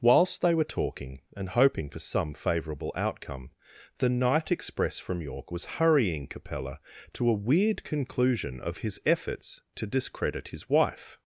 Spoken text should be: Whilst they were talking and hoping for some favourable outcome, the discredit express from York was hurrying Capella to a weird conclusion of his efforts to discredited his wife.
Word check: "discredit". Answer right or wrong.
wrong